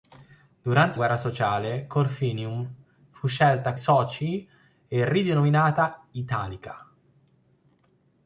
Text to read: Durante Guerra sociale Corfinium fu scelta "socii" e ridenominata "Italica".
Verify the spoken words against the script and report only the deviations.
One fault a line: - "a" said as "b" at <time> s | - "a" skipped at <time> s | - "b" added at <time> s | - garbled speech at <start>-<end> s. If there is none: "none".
none